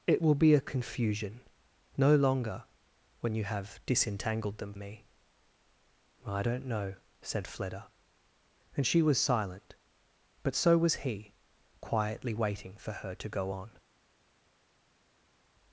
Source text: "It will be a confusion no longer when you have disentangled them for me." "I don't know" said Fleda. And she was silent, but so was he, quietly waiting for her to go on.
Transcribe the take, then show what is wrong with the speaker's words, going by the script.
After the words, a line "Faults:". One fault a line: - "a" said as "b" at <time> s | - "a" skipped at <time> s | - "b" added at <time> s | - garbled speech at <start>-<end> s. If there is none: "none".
"It will be a confusion no longer when you have disentangled them me." "I don't know" said Fleda. And she was silent, but so was he, quietly waiting for her to go on.
Faults:
- "for" skipped at 4.7 s